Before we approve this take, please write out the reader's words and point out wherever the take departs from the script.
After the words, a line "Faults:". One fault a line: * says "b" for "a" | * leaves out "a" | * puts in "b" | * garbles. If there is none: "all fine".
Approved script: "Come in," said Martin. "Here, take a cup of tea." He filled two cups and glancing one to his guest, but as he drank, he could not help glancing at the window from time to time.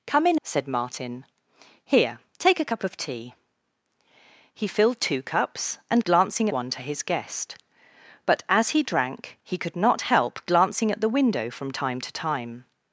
"Come in," said Martin. "Here, take a cup of tea." He filled two cups and glancing one to his guest, but as he drank, he could not help glancing at the window from time to time.
Faults:
all fine